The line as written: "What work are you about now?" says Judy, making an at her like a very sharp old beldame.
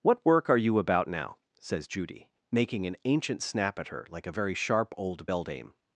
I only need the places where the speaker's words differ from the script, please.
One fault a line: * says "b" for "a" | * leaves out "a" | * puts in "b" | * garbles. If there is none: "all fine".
* puts in "ancient snap"